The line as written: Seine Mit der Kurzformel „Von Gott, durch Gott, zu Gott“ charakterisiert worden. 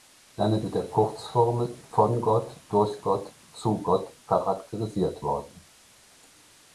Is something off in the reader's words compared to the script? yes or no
no